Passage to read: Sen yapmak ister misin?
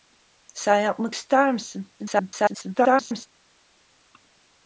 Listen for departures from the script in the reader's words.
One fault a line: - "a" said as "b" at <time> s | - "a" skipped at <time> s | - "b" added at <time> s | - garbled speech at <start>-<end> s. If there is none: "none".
- garbled speech at 2.0-3.3 s